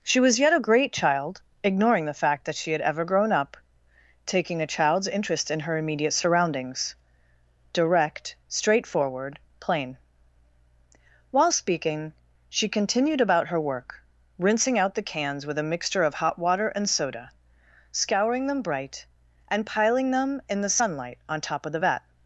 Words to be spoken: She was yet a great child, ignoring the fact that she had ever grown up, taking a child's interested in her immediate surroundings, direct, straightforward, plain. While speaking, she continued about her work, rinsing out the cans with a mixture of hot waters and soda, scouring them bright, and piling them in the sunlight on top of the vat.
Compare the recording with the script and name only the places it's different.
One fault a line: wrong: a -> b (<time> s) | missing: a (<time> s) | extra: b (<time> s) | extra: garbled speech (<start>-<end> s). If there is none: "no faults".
wrong: interested -> interest (5.1 s)
wrong: waters -> water (16.4 s)